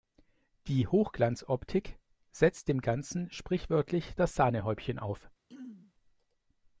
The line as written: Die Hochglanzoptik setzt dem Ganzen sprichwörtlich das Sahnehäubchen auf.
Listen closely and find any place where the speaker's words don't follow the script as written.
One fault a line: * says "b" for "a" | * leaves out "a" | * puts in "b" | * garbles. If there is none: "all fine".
all fine